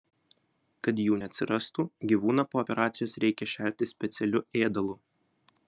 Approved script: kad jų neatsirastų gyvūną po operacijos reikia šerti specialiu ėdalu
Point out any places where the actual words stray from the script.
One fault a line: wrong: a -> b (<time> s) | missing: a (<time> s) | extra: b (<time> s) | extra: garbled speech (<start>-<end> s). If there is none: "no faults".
no faults